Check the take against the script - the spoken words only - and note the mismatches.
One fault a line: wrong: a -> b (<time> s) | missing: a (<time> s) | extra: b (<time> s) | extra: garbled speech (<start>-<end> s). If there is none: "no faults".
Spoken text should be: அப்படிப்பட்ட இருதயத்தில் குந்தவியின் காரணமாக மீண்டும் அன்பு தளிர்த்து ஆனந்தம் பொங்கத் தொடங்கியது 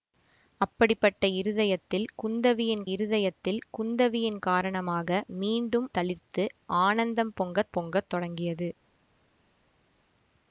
extra: இருதயத்தில் குந்தவியின் (2.9 s)
missing: அன்பு (5.9 s)
extra: பொங்கத் (7.7 s)